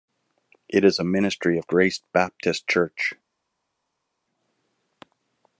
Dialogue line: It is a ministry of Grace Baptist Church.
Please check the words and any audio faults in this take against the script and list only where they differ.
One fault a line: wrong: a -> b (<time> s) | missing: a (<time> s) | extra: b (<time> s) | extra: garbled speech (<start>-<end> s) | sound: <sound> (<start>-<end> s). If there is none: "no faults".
no faults